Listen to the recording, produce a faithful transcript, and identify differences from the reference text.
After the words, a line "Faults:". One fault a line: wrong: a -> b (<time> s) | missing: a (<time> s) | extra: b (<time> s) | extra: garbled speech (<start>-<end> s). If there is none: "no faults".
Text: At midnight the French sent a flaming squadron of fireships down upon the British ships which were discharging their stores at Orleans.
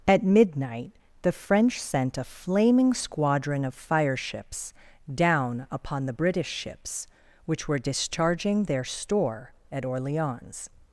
At midnight the French sent a flaming squadron of fireships down upon the British ships which were discharging their store at Orleans.
Faults:
wrong: stores -> store (8.8 s)